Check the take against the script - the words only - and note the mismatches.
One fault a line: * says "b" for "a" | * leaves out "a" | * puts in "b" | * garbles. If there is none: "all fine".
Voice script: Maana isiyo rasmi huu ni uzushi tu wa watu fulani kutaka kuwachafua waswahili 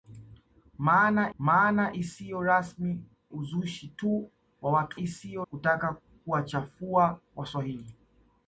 * puts in "maana"
* leaves out "huu ni"
* says "isiyo" for "fulani"